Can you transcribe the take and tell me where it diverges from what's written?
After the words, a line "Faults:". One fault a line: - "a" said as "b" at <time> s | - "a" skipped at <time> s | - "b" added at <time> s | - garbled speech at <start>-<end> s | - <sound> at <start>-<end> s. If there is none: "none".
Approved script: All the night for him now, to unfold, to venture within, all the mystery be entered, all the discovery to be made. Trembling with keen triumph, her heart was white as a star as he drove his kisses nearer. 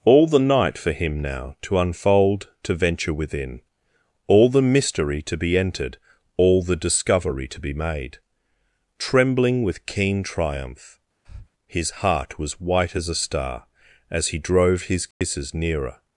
All the night for him now, to unfold, to venture within, all the mystery to be entered, all the discovery to be made. Trembling with keen triumph, his heart was white as a star as he drove his kisses nearer.
Faults:
- "to" added at 5.2 s
- breath at 11.2-11.5 s
- "her" said as "his" at 11.6 s
- dropout at 15.1-15.2 s